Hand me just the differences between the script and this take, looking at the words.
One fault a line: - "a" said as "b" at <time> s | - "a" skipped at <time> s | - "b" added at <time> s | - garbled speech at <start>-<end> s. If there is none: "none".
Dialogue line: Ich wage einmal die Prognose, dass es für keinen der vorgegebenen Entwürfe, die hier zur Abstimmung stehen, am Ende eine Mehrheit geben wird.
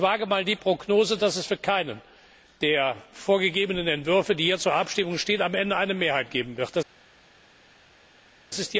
none